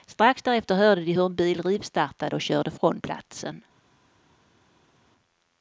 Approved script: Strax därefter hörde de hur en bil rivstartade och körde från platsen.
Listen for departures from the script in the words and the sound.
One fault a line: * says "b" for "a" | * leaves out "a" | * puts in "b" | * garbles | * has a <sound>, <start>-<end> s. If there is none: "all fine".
all fine